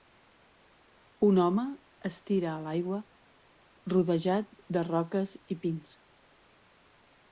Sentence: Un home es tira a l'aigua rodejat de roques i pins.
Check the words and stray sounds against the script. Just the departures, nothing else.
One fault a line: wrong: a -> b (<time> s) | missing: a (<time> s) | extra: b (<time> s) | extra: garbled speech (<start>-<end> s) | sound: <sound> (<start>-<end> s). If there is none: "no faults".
no faults